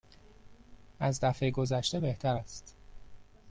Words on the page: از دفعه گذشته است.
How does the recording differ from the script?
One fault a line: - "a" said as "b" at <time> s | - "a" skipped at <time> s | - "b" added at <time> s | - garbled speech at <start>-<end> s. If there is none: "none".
- "بهتر" added at 2.0 s